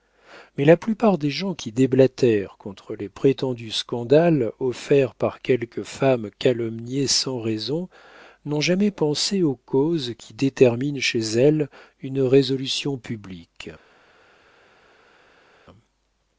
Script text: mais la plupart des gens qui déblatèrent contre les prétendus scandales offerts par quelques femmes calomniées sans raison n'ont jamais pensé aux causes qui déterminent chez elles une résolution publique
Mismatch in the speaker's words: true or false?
false